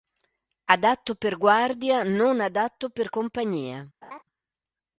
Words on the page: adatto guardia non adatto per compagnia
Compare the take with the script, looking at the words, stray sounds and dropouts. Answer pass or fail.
fail